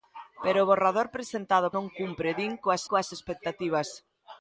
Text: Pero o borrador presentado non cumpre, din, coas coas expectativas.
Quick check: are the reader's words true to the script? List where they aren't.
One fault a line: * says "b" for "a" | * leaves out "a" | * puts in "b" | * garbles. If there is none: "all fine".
all fine